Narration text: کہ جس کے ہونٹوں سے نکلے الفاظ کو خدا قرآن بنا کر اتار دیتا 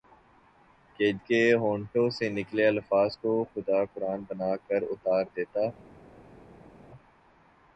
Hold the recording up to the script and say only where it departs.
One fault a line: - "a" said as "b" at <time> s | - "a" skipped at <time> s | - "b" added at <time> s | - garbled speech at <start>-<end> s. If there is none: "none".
- "جس" skipped at 1.1 s